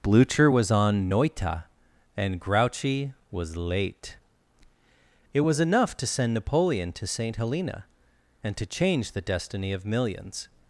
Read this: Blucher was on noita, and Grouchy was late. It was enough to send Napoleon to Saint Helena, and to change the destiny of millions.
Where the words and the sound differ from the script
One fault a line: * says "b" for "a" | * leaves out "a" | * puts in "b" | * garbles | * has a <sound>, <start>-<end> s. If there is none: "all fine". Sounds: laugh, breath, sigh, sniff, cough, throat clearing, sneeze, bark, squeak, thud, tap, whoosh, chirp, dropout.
all fine